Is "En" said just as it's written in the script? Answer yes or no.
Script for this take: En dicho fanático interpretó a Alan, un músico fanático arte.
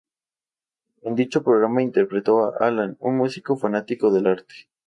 yes